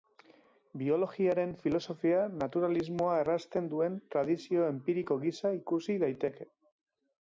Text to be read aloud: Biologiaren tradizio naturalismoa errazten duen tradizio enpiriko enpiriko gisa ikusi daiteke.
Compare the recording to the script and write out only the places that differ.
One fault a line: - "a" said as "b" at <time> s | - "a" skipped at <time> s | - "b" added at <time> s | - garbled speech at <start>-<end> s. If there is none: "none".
- "tradizio" said as "filosofia" at 1.6 s
- "enpiriko" skipped at 5.2 s